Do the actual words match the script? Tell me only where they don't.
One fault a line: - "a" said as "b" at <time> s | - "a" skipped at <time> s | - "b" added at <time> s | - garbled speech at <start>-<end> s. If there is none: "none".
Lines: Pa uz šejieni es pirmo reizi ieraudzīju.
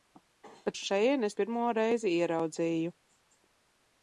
none